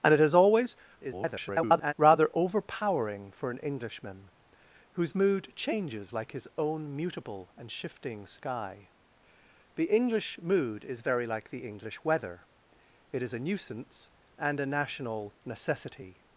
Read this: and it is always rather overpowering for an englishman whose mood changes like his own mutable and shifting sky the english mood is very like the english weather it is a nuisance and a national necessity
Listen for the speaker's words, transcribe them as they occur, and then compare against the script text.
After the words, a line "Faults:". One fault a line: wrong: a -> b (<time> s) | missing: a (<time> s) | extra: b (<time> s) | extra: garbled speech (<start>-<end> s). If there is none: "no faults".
and it is always [garbled] rather overpowering for an englishman whose mood changes like his own mutable and shifting sky the english mood is very like the english weather it is a nuisance and a national necessity
Faults:
extra: garbled speech (1.0-1.9 s)